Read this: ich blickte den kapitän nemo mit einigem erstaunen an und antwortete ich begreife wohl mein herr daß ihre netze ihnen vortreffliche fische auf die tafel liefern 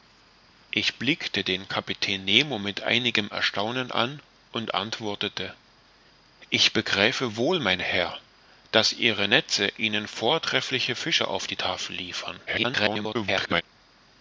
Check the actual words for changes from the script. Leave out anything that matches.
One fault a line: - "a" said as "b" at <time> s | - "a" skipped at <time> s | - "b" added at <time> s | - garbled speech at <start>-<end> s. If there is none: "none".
- garbled speech at 12.5-13.6 s